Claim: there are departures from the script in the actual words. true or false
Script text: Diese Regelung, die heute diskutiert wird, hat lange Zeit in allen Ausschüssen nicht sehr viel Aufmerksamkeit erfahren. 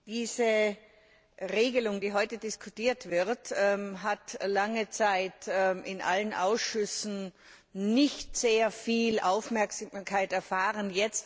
false